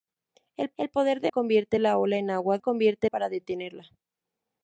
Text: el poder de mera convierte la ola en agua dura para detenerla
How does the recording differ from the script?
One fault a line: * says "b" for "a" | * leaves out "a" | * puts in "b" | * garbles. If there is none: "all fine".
* puts in "el"
* leaves out "mera"
* says "convierte" for "dura"